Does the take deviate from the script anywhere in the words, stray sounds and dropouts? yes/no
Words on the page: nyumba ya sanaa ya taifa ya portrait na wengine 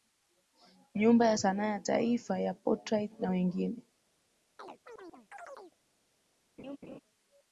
yes